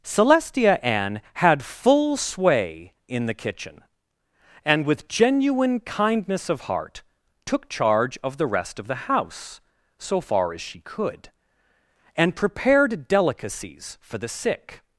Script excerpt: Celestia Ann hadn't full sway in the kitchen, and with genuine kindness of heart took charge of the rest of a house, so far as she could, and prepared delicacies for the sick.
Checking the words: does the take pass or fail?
fail